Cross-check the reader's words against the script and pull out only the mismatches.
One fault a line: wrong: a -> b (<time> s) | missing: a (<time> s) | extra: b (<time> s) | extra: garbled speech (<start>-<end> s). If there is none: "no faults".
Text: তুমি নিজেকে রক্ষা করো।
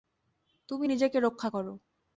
no faults